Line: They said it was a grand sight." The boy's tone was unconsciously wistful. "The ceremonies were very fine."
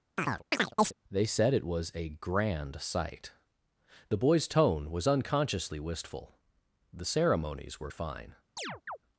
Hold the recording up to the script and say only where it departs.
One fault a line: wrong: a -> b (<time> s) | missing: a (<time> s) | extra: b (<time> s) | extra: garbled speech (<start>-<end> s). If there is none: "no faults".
missing: very (7.9 s)